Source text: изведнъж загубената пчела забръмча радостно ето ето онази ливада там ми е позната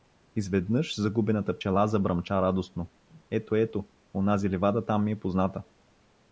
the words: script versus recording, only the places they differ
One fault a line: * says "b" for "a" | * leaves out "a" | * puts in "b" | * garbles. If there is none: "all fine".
all fine